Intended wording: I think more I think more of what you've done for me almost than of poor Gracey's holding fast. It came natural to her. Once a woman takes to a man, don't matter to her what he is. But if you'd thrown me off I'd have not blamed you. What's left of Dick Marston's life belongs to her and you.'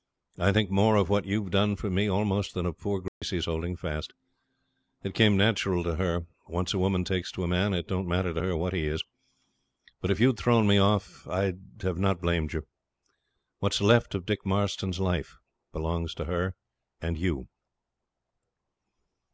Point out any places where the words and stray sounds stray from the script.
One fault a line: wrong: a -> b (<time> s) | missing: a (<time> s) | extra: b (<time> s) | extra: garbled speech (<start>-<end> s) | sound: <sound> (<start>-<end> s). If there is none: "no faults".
missing: I think more (0.9 s)
sound: dropout (3.1-3.2 s)
extra: it (7.8 s)